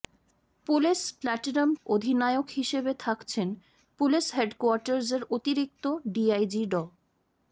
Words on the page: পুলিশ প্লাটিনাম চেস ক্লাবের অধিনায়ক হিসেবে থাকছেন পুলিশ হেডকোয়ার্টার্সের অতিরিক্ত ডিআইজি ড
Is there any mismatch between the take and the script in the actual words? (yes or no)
yes